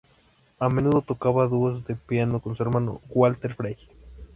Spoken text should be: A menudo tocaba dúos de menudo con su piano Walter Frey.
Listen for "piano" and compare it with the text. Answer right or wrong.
wrong